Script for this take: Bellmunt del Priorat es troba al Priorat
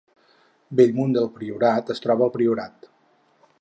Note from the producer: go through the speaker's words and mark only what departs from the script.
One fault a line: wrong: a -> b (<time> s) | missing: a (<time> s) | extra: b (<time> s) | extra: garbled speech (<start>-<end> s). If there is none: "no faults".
no faults